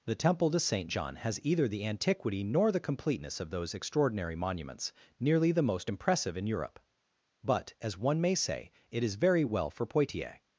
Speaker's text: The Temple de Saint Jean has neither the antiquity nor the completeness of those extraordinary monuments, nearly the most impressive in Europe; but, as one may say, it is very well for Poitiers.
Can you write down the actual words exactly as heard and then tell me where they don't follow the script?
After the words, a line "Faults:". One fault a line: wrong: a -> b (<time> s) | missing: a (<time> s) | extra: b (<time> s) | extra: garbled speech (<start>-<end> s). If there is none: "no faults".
The Temple de Saint Jean has either the antiquity nor the completeness of those extraordinary monuments, nearly the most impressive in Europe; but, as one may say, it is very well for Poitiers.
Faults:
wrong: neither -> either (1.4 s)